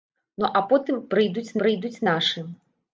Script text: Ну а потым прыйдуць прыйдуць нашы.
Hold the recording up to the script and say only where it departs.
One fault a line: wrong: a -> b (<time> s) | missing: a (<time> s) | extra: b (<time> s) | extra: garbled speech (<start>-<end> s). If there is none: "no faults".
no faults